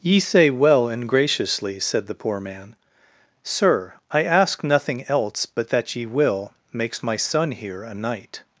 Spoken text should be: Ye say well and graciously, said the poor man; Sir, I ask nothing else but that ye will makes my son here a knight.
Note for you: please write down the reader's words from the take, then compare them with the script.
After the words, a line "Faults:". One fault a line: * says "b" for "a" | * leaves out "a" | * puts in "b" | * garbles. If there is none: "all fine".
Ye say well and graciously, said the poor man; Sir, I ask nothing else but that ye will makes my son here a knight.
Faults:
all fine